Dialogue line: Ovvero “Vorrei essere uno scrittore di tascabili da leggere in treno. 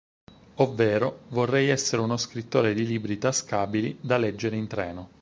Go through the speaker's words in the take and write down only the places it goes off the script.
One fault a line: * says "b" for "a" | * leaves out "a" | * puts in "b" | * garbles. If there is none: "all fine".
* puts in "libri"